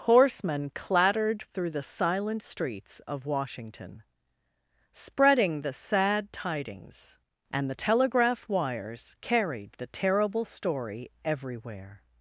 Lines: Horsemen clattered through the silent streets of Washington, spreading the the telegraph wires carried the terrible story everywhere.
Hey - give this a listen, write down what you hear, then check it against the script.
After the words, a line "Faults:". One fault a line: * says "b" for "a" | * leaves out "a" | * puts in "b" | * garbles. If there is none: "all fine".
Horsemen clattered through the silent streets of Washington, spreading the sad tidings, and the telegraph wires carried the terrible story everywhere.
Faults:
* puts in "sad tidings and"